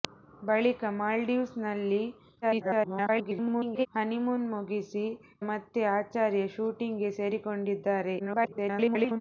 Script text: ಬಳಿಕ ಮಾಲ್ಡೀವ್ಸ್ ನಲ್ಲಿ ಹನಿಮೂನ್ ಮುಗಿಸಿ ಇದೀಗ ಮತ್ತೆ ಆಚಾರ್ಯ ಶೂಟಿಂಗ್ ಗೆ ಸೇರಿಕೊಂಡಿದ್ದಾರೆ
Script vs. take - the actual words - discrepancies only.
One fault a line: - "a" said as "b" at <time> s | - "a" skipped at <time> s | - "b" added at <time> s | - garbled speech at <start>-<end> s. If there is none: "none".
- garbled speech at 2.4-3.9 s
- "ಇದೀಗ" skipped at 5.0 s
- garbled speech at 8.2-9.2 s